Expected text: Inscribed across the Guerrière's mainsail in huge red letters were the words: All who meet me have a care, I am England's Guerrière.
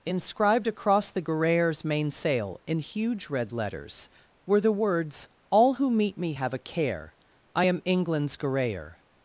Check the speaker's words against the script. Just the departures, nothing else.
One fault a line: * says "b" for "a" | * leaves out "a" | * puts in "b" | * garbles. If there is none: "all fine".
all fine